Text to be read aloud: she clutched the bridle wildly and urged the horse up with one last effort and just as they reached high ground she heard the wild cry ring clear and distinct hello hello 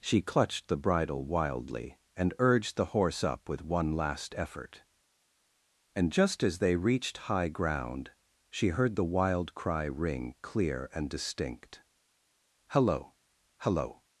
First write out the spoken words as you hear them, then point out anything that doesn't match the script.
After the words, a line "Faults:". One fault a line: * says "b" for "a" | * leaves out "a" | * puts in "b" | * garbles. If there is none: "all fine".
she clutched the bridle wildly and urged the horse up with one last effort and just as they reached high ground she heard the wild cry ring clear and distinct hello hello
Faults:
all fine